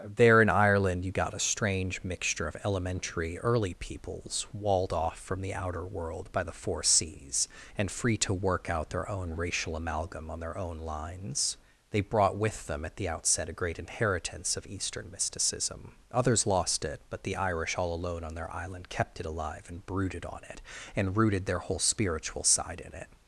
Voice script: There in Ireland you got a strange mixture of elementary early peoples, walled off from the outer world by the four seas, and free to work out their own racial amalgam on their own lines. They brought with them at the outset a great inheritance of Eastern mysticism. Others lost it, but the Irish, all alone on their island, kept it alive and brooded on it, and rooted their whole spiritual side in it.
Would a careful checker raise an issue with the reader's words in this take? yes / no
no